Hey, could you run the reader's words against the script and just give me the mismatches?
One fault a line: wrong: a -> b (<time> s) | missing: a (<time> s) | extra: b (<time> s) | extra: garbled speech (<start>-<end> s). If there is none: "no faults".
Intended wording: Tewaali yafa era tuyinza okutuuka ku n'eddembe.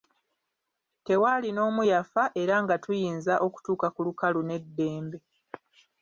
extra: n'omu (1.5 s)
extra: nga (2.6 s)
extra: lukalu (4.1 s)